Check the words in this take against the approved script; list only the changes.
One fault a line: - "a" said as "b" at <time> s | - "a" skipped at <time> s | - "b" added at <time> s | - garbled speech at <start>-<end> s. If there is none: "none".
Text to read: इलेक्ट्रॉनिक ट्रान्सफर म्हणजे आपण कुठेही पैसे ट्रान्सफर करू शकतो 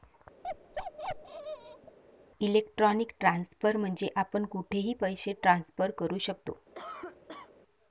none